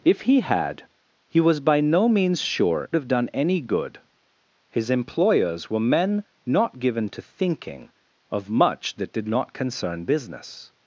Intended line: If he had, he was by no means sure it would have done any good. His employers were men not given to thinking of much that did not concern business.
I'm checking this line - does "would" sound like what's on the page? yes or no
no